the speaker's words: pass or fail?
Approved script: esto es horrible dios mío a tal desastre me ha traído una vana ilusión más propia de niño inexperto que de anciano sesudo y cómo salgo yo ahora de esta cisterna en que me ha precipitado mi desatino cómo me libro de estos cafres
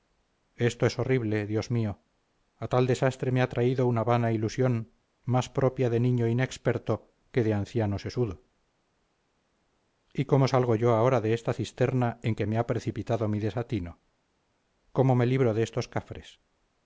pass